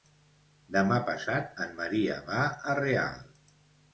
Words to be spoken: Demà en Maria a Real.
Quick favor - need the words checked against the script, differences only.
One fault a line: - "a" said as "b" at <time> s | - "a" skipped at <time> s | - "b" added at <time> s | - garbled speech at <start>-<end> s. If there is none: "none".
- "passat" added at 1.1 s
- "va" added at 2.3 s